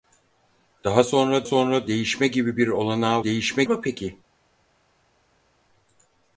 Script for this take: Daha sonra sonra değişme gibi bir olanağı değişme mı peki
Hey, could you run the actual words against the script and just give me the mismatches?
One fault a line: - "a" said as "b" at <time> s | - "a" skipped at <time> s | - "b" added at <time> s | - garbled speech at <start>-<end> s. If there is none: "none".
none